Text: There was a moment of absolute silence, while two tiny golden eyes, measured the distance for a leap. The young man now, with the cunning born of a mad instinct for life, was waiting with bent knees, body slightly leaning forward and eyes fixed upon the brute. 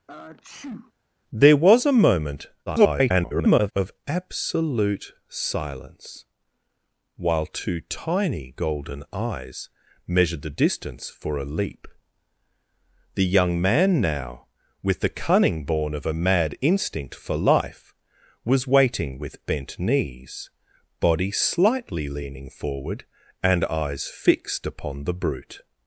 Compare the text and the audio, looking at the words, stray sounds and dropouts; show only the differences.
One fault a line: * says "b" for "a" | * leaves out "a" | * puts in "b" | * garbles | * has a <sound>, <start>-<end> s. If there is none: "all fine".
* has a sneeze, 0.1-0.9 s
* garbles